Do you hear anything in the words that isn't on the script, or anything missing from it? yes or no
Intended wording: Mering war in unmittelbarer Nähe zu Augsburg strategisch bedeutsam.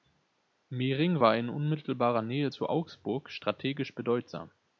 no